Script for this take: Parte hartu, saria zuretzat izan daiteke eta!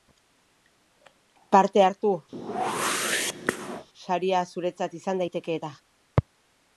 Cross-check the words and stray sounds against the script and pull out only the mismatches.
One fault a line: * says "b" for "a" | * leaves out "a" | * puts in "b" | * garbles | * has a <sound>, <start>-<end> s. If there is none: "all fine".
* has a whoosh, 2.3-3.9 s